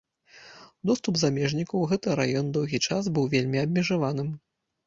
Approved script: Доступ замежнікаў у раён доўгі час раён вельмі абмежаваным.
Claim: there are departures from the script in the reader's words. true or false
true